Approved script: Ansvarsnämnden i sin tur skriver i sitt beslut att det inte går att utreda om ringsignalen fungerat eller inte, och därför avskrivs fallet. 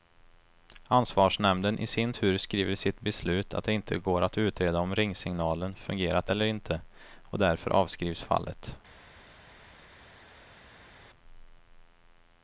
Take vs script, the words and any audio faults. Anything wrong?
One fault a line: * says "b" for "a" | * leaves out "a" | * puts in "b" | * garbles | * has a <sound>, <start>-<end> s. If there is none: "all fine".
all fine